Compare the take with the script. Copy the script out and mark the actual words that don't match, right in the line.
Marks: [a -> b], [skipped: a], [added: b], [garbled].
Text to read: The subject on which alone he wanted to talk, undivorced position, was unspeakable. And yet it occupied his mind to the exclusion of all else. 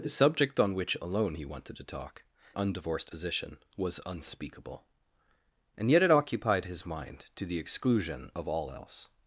The subject on which alone he wanted to talk, undivorced position, was unspeakable. And yet it occupied his mind to the exclusion of all else.